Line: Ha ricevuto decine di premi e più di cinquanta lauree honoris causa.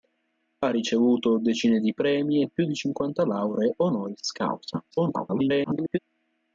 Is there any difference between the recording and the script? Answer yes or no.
yes